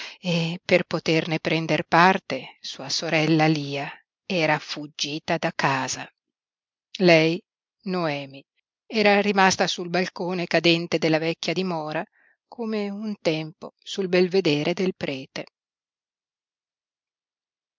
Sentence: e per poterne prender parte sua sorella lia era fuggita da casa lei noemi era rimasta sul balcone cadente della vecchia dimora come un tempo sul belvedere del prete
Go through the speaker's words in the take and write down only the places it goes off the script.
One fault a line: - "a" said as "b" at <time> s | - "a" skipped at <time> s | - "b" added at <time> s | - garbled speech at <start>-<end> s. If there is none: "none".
none